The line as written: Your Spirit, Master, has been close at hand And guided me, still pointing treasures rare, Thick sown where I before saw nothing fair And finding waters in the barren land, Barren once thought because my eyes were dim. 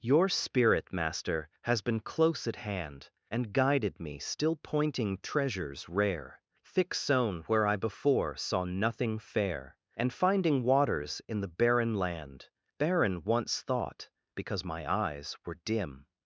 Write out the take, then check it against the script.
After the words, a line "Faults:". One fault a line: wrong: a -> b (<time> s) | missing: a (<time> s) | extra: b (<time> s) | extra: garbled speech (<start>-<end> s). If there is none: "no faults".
Your Spirit, Master, has been close at hand And guided me, still pointing treasures rare, Thick sown where I before saw nothing fair And finding waters in the barren land, Barren once thought because my eyes were dim.
Faults:
no faults